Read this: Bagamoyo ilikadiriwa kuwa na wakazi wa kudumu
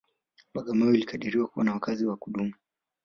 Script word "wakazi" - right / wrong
right